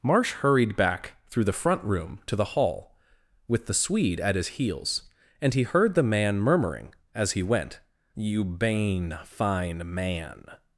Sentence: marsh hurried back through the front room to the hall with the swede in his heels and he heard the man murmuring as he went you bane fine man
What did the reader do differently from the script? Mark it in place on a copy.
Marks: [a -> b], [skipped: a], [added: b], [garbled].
marsh hurried back through the front room to the hall with the swede [in -> at] his heels and he heard the man murmuring as he went you bane fine man